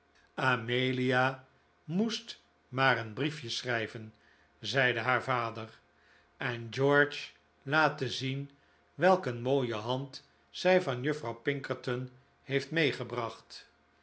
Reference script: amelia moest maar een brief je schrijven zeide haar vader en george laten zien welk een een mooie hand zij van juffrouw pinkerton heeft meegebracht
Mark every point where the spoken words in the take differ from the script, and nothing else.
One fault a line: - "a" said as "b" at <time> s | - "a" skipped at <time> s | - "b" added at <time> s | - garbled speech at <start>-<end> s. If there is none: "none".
- "een" skipped at 9.4 s